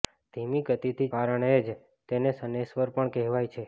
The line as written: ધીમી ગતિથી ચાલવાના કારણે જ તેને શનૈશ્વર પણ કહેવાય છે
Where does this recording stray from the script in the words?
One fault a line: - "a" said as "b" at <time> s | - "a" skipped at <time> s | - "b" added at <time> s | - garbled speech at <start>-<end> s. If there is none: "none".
- "ચાલવાના" skipped at 1.1 s